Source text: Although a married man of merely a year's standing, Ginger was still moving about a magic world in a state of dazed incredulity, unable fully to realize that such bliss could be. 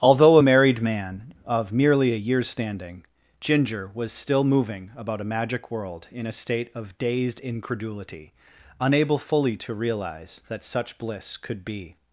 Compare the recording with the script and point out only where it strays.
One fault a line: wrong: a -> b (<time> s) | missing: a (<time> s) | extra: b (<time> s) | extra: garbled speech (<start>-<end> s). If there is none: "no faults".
no faults